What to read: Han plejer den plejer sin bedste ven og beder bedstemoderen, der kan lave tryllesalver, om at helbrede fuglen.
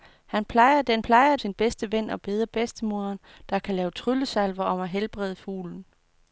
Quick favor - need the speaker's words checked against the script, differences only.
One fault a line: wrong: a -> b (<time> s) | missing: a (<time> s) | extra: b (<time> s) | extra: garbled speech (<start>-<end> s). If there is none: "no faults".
no faults